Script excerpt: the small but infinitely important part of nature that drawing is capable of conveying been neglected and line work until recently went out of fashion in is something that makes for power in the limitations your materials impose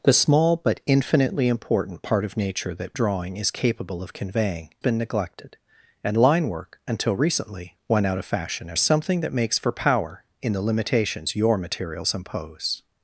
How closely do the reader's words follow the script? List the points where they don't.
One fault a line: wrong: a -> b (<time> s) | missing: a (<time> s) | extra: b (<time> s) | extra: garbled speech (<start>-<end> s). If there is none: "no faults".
no faults